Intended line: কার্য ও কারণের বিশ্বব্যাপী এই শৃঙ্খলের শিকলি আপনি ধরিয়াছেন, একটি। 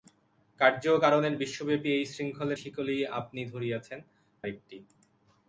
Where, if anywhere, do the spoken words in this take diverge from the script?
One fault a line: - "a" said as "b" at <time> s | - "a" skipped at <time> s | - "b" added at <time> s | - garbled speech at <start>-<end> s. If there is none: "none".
none